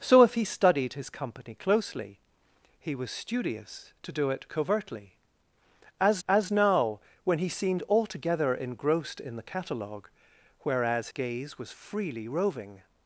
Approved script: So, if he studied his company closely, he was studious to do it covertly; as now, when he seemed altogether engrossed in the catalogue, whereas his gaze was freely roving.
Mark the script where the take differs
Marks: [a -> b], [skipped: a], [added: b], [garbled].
So, if he studied his company closely, he was studious to do it covertly; as [added: as] now, when he seemed altogether engrossed in the catalogue, whereas [skipped: his] gaze was freely roving.